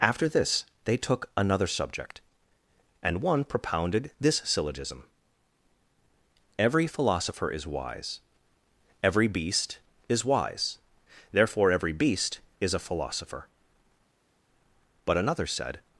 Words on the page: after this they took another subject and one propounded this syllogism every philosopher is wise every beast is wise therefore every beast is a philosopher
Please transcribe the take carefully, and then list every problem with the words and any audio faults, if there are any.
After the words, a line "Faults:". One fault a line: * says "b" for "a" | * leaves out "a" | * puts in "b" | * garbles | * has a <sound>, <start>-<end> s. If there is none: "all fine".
after this they took another subject and one propounded this syllogism every philosopher is wise every beast is wise therefore every beast is a philosopher but another said
Faults:
* puts in "but another said"